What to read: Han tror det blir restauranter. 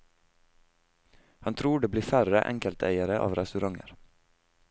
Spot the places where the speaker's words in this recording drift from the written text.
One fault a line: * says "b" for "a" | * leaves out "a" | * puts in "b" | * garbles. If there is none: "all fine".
* puts in "færre enkelteiere av"